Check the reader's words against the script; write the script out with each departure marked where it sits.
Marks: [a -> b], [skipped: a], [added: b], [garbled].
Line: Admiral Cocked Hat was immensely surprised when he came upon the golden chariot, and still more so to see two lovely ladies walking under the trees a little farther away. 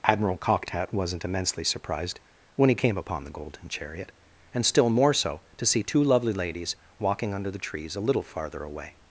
Admiral Cocked Hat [was -> wasn't] immensely surprised when he came upon the golden chariot, and still more so to see two lovely ladies walking under the trees a little farther away.